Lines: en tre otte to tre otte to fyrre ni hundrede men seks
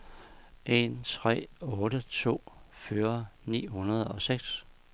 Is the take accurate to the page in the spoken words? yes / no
no